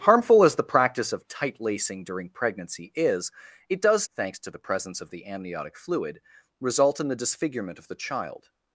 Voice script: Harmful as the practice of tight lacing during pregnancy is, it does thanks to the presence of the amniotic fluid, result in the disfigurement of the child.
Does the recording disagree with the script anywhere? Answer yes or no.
no